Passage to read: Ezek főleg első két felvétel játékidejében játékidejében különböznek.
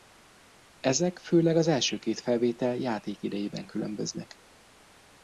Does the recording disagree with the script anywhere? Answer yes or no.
yes